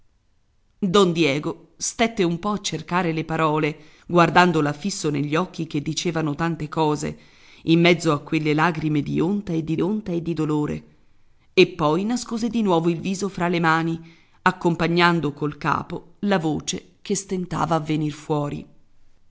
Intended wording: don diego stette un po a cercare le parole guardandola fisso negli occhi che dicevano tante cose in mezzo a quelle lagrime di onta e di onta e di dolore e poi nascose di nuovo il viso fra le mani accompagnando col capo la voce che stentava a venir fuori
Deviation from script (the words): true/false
false